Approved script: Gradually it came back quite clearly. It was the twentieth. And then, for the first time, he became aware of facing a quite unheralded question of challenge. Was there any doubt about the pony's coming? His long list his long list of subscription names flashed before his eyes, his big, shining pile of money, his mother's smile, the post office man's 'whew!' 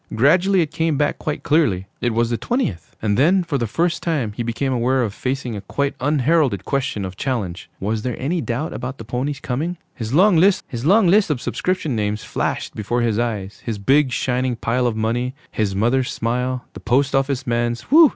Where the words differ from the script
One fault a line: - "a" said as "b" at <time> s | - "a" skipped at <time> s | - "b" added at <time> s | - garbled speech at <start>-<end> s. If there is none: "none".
none